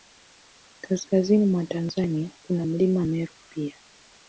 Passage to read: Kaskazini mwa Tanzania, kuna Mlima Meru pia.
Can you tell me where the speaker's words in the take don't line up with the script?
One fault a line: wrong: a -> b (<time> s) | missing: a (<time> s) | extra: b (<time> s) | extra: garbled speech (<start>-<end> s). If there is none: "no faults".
no faults